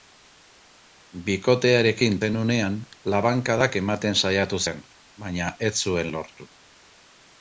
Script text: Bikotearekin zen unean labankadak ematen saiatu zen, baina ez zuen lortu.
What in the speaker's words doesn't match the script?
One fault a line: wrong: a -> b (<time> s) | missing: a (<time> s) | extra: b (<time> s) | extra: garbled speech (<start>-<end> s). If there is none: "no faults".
no faults